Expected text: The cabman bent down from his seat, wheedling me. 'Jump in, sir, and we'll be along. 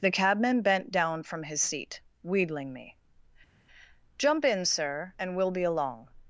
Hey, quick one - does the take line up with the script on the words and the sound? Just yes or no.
yes